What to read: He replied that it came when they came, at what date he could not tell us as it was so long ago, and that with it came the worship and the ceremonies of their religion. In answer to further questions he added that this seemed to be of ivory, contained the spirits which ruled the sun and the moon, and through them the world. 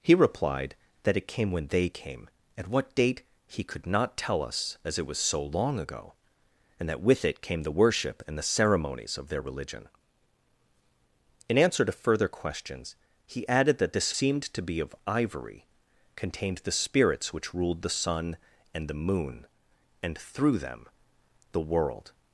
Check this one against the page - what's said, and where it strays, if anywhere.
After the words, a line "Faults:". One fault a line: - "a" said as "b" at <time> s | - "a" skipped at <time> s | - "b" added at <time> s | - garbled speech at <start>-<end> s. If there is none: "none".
He replied that it came when they came, at what date he could not tell us as it was so long ago, and that with it came the worship and the ceremonies of their religion. In answer to further questions he added that this seemed to be of ivory, contained the spirits which ruled the sun and the moon, and through them the world.
Faults:
none